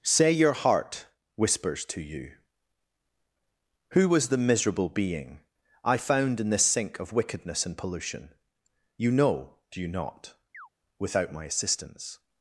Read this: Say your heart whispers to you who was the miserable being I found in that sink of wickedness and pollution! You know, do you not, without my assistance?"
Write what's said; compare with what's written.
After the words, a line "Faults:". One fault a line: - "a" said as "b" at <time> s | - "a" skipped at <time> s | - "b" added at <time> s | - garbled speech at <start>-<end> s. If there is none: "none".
Say your heart whispers to you who was the miserable being I found in this sink of wickedness and pollution! You know, do you not, without my assistance?"
Faults:
- "that" said as "this" at 6.5 s